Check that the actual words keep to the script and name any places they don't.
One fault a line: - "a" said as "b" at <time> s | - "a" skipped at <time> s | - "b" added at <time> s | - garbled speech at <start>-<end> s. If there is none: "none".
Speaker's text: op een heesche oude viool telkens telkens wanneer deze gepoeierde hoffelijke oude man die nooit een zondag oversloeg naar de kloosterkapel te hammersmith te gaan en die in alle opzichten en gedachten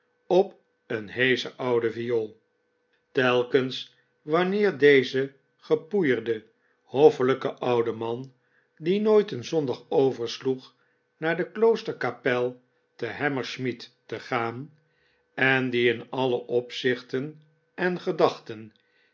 - "telkens" skipped at 4.0 s